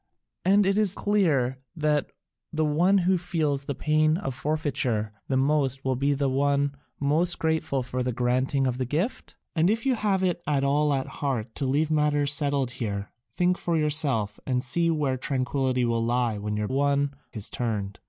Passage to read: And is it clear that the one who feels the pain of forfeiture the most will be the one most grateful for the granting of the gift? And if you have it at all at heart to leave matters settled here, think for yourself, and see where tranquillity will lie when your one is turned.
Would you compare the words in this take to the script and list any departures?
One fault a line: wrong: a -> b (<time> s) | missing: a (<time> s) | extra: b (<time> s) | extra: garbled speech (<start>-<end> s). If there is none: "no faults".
no faults